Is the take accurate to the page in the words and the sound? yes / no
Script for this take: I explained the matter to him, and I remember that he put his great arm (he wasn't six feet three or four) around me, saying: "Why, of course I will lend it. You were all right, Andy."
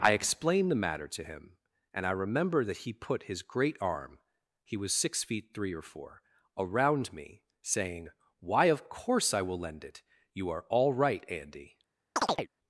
no